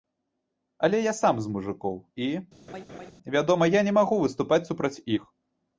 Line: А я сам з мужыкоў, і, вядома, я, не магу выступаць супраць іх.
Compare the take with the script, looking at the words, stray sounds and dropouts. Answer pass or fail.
fail